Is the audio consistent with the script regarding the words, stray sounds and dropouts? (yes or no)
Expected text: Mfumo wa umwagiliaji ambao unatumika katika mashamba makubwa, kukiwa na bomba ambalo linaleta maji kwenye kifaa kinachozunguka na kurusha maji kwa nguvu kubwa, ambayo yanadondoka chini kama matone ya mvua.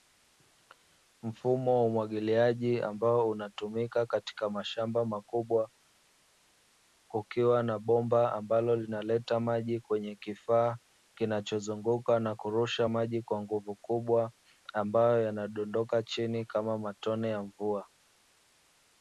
yes